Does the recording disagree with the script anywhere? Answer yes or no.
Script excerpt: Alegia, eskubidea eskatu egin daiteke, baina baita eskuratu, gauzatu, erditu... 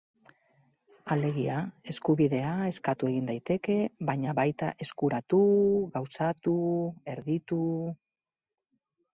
no